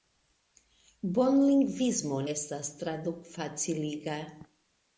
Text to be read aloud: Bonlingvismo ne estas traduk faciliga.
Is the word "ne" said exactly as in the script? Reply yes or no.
no